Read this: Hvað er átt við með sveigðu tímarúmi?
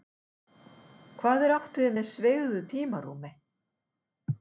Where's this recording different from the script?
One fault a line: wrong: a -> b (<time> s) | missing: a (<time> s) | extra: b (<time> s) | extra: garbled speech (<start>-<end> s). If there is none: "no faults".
no faults